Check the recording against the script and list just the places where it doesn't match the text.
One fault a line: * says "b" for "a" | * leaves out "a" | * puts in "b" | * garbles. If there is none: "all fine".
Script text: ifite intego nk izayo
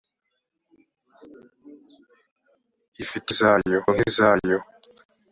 * says "izayo" for "intego"